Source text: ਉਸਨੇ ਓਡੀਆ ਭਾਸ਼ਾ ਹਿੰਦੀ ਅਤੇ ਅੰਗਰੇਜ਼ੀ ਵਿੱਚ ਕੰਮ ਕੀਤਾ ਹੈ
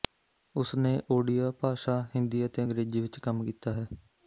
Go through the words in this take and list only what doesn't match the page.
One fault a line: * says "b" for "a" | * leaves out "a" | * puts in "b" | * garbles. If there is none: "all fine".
all fine